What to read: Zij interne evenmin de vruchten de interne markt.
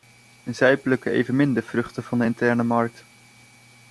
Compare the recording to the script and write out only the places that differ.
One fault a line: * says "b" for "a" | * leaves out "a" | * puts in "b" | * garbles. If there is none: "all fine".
* says "plukken" for "interne"
* puts in "van"